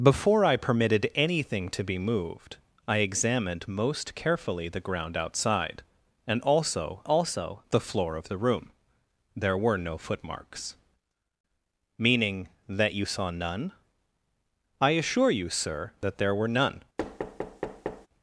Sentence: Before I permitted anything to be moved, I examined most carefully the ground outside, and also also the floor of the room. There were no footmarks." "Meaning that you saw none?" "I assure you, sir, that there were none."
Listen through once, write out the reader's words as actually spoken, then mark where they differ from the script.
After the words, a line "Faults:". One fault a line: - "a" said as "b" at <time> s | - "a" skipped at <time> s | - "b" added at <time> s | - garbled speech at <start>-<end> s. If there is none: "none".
Before I permitted anything to be moved, I examined most carefully the ground outside, and also also the floor of the room. There were no footmarks." "Meaning that you saw none?" "I assure you, sir, that there were none."
Faults:
none